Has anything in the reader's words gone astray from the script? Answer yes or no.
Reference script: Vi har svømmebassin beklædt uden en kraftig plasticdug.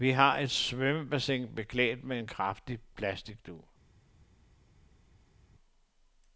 yes